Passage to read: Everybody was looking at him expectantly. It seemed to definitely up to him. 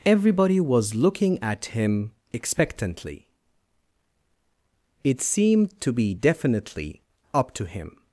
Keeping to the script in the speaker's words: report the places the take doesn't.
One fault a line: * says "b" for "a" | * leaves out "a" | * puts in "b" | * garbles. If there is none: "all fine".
* puts in "be"